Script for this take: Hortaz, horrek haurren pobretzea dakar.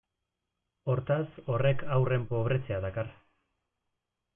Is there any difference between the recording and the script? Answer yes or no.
no